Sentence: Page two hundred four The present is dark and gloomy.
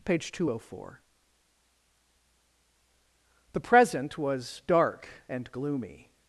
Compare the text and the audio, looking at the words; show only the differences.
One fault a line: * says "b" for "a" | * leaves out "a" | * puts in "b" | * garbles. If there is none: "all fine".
* says "was" for "is"